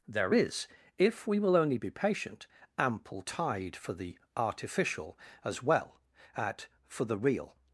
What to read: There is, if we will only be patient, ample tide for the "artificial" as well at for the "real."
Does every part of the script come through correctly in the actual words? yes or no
yes